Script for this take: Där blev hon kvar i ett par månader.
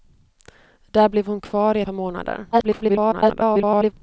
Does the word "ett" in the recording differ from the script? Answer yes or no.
yes